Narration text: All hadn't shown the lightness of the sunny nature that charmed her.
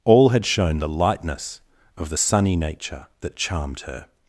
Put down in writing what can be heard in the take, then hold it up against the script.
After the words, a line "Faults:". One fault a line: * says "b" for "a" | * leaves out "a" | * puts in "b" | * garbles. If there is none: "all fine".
All had shown the lightness of the sunny nature that charmed her.
Faults:
* says "had" for "hadn't"